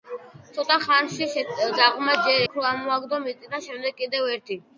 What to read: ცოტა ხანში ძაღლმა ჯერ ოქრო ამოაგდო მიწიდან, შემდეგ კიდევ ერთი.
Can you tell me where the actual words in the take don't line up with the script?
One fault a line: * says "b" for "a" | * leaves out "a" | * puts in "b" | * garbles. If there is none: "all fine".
all fine